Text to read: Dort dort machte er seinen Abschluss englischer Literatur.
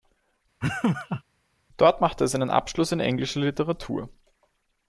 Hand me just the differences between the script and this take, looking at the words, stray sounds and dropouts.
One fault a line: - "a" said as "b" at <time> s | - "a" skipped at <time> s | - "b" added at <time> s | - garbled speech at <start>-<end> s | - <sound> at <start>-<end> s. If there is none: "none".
- laugh at 0.6-1.2 s
- "dort" skipped at 2.0 s
- "in" added at 2.9 s